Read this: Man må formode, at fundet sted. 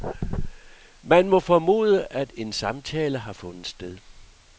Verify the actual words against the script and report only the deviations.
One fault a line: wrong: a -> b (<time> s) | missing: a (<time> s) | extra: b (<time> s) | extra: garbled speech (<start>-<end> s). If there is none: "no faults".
extra: en samtale har (2.4 s)